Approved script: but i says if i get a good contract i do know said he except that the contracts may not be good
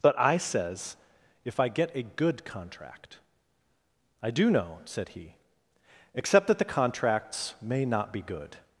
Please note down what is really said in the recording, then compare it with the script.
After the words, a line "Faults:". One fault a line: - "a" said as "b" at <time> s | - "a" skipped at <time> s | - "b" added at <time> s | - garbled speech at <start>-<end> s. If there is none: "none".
but i says if i get a good contract i do know said he except that the contracts may not be good
Faults:
none